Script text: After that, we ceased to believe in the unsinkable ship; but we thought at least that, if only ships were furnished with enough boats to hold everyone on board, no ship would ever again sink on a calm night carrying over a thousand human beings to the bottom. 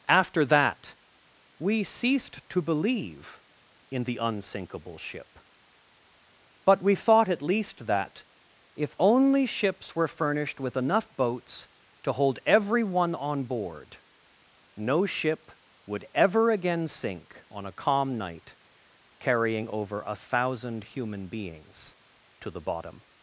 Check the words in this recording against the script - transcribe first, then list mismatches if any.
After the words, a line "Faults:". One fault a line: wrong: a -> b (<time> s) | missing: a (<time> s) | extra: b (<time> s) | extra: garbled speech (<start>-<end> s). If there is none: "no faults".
After that, we ceased to believe in the unsinkable ship; but we thought at least that, if only ships were furnished with enough boats to hold everyone on board, no ship would ever again sink on a calm night carrying over a thousand human beings to the bottom.
Faults:
no faults